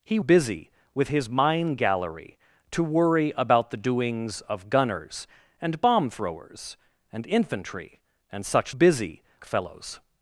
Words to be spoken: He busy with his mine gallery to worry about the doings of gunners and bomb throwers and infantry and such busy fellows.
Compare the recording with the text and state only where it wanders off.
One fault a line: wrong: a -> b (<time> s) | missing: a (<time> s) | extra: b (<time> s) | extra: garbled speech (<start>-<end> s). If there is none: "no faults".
no faults